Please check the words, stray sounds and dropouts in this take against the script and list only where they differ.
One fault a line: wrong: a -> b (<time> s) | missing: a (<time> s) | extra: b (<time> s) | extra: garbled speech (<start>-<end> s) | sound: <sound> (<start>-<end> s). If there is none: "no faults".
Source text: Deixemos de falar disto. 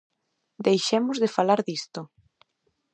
no faults